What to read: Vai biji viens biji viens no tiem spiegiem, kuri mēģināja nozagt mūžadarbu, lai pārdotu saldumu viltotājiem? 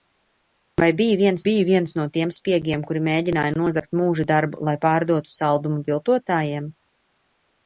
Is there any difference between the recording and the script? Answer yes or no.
no